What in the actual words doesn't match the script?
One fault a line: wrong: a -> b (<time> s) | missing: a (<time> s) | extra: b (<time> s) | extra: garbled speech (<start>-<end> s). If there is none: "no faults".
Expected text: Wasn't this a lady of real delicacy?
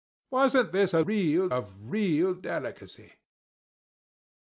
wrong: lady -> real (1.0 s)